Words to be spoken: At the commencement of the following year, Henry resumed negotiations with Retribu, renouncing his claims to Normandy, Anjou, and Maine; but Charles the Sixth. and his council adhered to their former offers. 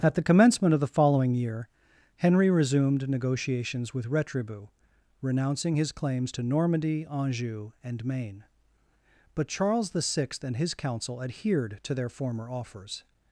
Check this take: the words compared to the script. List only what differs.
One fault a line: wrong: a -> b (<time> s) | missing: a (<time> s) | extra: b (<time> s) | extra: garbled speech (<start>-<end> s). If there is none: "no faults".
no faults